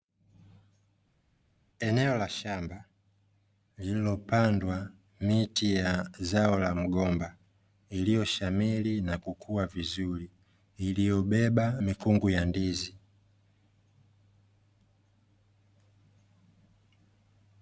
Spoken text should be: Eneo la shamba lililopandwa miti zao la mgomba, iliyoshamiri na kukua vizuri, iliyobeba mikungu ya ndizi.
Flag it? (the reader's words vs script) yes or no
yes